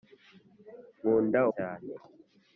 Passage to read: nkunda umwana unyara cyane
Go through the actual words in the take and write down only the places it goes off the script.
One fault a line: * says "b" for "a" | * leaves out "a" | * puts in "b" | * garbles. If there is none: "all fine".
* leaves out "umwana unyara"